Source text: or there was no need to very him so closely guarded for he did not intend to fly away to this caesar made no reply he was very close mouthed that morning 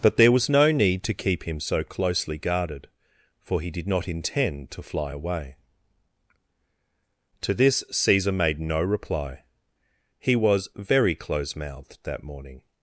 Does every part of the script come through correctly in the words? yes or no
no